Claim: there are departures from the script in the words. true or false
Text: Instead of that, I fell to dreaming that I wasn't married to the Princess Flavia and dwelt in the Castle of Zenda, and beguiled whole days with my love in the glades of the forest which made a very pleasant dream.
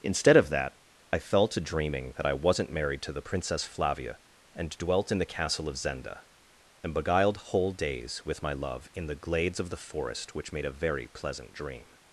false